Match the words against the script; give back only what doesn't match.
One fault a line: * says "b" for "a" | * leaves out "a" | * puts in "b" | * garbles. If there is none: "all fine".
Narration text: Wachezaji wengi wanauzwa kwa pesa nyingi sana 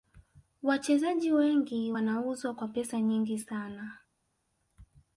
all fine